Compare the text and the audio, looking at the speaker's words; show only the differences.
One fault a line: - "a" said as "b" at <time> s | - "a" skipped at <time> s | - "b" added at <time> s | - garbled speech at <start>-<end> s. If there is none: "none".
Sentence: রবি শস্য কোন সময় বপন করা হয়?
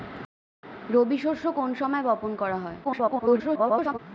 - garbled speech at 2.8-4.0 s